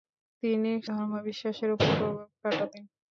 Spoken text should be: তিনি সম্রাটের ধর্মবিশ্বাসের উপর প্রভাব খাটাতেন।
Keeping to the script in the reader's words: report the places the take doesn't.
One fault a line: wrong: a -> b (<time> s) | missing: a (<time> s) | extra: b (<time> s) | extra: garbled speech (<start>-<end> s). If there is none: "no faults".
missing: সম্রাটের (0.7 s)